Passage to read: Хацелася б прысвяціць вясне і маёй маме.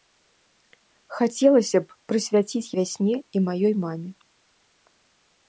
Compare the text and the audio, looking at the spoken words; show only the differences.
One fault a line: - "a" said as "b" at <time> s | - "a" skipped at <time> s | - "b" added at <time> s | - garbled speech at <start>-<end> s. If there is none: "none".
none